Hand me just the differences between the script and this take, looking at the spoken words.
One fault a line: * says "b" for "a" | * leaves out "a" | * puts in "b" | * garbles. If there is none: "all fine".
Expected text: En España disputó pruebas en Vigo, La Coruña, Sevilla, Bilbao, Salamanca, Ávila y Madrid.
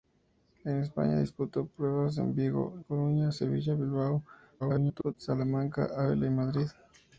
* leaves out "La"
* garbles